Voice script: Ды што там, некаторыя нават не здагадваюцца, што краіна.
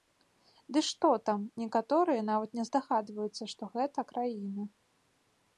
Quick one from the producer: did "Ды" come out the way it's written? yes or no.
yes